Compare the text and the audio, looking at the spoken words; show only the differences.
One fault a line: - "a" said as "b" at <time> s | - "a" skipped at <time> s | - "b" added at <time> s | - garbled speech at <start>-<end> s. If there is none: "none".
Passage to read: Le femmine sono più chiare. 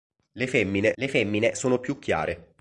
- "le femmine" added at 0.9 s